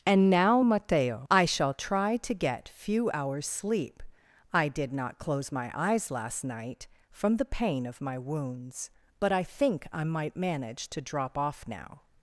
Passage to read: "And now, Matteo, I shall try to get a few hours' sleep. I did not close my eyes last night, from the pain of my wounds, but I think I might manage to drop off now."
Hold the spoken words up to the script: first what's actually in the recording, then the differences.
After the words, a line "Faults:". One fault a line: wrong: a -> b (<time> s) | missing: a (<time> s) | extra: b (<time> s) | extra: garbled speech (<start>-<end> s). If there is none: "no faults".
"And now, Matteo, I shall try to get few hours' sleep. I did not close my eyes last night, from the pain of my wounds, but I think I might manage to drop off now."
Faults:
missing: a (2.7 s)